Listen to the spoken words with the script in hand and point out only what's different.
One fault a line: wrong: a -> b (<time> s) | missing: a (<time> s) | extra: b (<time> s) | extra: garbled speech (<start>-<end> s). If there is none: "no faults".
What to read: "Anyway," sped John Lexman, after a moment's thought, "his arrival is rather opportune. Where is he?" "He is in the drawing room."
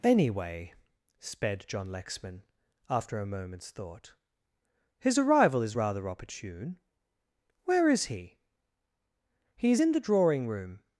no faults